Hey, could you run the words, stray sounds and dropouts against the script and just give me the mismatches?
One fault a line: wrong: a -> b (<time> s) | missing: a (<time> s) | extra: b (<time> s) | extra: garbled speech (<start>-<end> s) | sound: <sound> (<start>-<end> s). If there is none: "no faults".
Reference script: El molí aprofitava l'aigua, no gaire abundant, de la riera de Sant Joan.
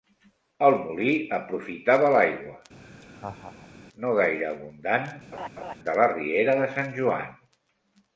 sound: laugh (2.8-3.8 s)
sound: laugh (5.3-5.7 s)